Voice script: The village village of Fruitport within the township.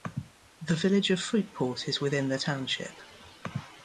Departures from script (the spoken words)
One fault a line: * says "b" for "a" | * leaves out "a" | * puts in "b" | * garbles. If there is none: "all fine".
* leaves out "village"
* puts in "is"